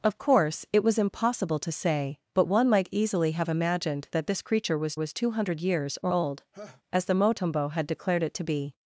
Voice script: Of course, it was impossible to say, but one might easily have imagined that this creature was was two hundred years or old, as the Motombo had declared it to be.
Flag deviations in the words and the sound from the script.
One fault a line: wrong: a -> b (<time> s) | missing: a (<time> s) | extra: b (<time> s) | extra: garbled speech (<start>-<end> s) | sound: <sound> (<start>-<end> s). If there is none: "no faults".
sound: laugh (6.5-6.8 s)